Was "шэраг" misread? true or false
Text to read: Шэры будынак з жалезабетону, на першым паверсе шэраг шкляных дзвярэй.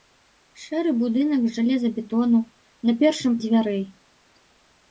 true